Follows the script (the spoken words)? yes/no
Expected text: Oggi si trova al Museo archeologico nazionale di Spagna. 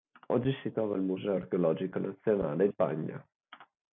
no